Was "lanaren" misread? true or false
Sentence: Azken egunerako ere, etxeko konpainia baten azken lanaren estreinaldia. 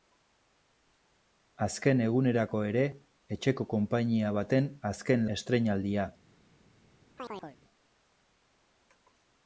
true